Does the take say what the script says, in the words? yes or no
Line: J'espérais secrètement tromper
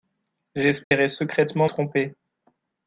yes